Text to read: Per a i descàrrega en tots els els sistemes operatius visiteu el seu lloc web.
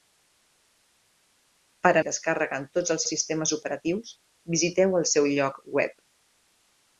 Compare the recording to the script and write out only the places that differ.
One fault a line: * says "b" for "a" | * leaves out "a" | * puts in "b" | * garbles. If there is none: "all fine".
all fine